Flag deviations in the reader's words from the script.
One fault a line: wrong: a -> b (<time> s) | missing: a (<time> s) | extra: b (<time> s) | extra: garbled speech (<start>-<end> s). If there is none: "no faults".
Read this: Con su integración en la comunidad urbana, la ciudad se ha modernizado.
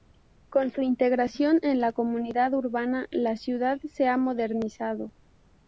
no faults